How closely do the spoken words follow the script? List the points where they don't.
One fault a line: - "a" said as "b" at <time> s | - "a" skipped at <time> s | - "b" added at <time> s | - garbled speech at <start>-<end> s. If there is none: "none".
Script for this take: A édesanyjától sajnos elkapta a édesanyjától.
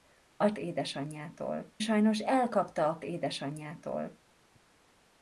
none